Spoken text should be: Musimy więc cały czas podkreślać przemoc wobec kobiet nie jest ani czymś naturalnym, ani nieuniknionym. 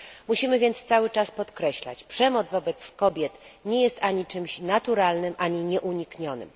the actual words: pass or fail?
pass